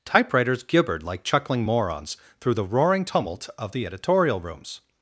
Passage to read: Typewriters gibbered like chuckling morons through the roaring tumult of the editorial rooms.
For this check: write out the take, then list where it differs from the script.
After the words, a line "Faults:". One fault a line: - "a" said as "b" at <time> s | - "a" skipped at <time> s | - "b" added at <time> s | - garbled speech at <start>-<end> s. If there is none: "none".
Typewriters gibbered like chuckling morons through the roaring tumult of the editorial rooms.
Faults:
none